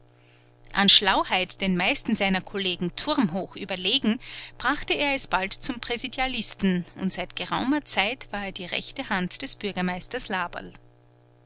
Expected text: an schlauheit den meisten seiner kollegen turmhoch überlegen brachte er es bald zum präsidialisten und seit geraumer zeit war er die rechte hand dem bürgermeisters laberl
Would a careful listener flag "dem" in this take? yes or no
yes